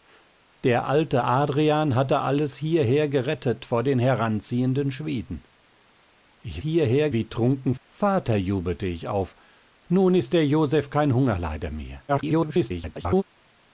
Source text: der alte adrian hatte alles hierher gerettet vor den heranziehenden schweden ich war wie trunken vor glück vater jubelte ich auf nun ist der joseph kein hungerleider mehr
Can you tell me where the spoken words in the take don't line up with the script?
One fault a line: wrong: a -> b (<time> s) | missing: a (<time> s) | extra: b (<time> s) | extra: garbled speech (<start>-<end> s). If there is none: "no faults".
wrong: war -> hierher (6.6 s)
missing: vor glück (7.7 s)
extra: garbled speech (12.1-13.2 s)